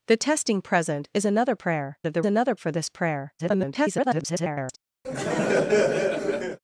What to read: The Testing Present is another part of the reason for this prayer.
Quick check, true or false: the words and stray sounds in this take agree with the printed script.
false